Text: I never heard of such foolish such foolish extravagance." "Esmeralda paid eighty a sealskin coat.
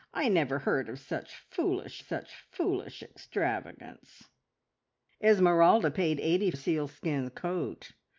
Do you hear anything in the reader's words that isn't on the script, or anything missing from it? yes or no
no